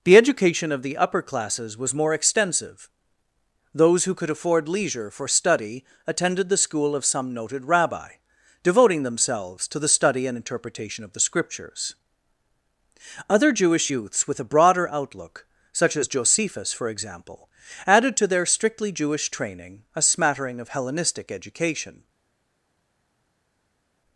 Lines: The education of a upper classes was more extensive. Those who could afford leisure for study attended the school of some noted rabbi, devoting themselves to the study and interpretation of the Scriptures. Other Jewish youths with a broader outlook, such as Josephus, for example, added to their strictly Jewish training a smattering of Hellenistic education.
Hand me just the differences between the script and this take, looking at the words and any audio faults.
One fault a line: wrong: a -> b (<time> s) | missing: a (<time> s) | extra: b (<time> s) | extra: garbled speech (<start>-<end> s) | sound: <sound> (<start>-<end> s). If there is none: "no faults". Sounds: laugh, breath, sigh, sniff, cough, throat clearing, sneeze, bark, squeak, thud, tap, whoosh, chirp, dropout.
wrong: a -> the (0.8 s)